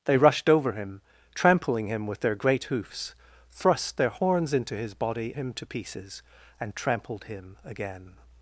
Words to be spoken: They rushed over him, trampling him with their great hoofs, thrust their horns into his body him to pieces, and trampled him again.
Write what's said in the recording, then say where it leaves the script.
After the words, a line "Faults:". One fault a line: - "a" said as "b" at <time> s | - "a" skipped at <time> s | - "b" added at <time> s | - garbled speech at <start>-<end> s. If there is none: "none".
They rushed over him, trampling him with their great hoofs, thrust their horns into his body him to pieces, and trampled him again.
Faults:
none